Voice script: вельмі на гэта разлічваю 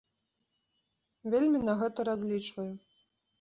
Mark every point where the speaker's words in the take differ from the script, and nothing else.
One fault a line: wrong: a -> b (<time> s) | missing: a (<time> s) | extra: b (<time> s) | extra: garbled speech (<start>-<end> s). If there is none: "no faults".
no faults